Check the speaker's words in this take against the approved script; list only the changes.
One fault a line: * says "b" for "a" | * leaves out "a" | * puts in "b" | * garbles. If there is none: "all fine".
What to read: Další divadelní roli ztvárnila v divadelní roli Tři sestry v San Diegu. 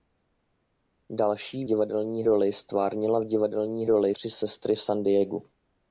all fine